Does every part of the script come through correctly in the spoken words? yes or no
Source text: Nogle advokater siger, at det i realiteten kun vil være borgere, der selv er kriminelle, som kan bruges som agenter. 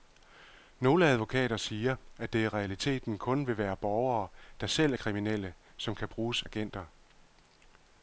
no